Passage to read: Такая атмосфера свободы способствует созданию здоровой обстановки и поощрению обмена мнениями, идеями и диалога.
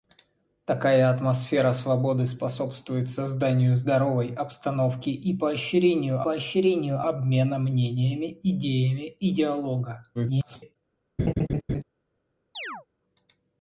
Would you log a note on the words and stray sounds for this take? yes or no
yes